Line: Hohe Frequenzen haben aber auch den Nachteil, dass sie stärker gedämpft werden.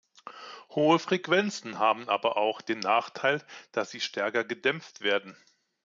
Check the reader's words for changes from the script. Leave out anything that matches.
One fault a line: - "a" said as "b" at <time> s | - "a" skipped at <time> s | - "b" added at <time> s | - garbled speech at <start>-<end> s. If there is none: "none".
none